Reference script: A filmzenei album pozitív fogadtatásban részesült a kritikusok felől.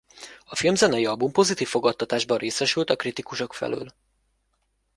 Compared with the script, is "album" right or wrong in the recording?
right